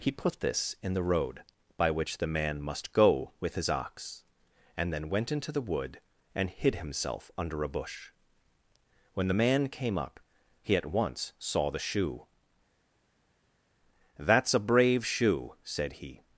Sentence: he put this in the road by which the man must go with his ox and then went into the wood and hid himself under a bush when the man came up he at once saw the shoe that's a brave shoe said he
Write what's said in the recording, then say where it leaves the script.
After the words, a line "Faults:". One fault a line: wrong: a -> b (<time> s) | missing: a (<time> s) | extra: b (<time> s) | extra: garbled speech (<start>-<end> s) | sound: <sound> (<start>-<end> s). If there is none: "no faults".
he put this in the road by which the man must go with his ox and then went into the wood and hid himself under a bush when the man came up he at once saw the shoe that's a brave shoe said he
Faults:
no faults